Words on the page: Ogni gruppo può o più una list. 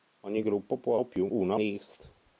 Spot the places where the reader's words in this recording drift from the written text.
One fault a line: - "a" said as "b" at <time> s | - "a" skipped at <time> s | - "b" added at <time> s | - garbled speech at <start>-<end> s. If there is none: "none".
none